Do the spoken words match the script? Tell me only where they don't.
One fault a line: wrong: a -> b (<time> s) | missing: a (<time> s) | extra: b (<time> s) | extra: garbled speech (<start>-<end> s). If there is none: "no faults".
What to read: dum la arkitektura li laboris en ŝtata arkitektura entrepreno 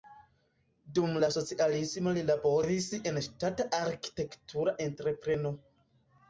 wrong: arkitektura -> socialismo (1.4 s)